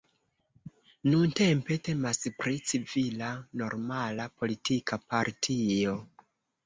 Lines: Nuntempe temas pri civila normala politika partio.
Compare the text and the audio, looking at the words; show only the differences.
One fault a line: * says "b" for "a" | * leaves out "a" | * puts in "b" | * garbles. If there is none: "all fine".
all fine